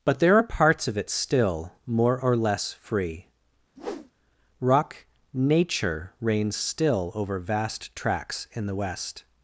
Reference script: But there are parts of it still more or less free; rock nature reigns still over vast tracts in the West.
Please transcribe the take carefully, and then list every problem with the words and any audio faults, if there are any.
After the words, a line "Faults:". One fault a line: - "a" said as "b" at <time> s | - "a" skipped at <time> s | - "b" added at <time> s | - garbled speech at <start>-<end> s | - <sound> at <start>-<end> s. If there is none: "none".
But there are parts of it still more or less free; rock nature reigns still over vast tracts in the West.
Faults:
- whoosh at 3.8-4.1 s